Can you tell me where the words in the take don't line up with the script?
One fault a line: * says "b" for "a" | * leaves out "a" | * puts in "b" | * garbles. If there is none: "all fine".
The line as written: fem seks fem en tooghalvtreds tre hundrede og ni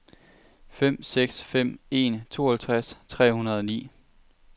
all fine